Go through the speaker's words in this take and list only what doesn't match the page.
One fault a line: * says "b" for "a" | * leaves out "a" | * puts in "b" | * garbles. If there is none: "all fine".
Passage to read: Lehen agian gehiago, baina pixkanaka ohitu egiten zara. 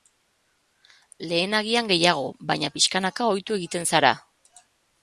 all fine